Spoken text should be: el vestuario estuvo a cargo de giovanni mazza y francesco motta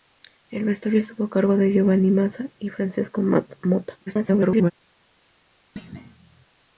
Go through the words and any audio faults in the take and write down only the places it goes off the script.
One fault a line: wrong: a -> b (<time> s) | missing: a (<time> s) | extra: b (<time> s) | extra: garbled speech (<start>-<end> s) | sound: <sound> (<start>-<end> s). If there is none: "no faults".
extra: garbled speech (4.1-4.7 s)
sound: thud (5.8-6.5 s)